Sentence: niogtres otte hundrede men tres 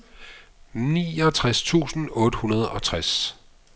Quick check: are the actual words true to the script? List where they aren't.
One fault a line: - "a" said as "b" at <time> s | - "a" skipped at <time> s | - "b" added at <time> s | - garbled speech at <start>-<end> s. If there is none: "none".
- "tusind" added at 1.6 s
- "men" said as "og" at 2.7 s